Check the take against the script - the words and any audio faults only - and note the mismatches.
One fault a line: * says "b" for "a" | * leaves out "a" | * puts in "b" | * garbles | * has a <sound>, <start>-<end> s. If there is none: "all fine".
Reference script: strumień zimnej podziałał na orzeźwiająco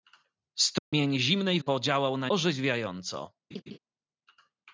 * has a dropout, 0.8-0.9 s
* has a laugh, 3.5-3.8 s